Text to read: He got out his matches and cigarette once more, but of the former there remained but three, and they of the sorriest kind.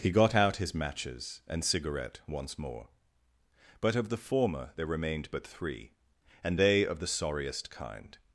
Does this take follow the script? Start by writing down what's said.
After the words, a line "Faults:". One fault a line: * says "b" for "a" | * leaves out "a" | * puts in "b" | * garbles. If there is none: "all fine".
He got out his matches and cigarette once more, but of the former there remained but three, and they of the sorriest kind.
Faults:
all fine